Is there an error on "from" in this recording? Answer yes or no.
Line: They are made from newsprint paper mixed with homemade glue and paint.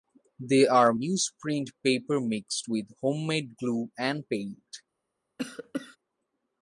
yes